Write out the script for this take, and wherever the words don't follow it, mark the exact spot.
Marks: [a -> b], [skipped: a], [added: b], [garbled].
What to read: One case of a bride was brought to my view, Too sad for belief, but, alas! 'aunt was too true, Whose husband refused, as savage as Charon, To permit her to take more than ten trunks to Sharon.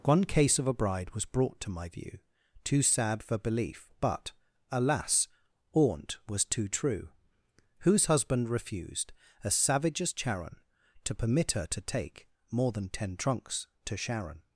One case of a bride was brought to my view, Too sad for belief, but, alas! 'aunt was too true, Whose husband refused, as savage as Charon, To permit her to take more than ten trunks to Sharon.